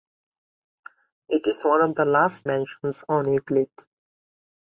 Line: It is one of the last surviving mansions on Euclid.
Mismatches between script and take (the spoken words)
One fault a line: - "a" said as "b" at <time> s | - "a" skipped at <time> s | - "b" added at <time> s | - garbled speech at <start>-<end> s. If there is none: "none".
- "surviving" skipped at 2.5 s